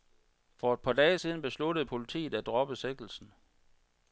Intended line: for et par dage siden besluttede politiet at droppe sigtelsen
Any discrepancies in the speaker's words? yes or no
no